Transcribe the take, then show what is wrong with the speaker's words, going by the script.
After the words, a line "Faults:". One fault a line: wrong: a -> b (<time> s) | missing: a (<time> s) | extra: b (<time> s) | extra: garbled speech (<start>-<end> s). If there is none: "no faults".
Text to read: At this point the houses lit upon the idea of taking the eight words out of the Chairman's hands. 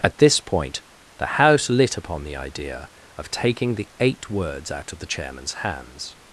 At this point the house lit upon the idea of taking the eight words out of the Chairman's hands.
Faults:
wrong: houses -> house (1.2 s)